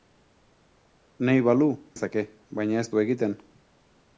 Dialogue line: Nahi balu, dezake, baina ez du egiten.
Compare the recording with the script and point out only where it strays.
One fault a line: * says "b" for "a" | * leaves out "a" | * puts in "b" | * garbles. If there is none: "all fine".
all fine